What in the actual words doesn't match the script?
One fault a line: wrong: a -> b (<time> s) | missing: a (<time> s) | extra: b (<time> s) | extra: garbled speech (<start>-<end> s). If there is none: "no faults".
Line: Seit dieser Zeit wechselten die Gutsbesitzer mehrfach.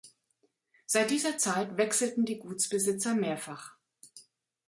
no faults